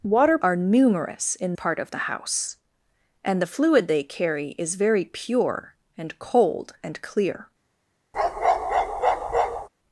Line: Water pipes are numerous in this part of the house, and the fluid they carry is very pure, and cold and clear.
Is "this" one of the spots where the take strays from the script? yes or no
yes